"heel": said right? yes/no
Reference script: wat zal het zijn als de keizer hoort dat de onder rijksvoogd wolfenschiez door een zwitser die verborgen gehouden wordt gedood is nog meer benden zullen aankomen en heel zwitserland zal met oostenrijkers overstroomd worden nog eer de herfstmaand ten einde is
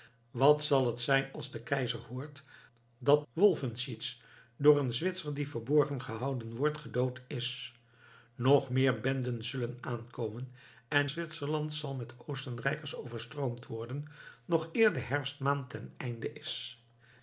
no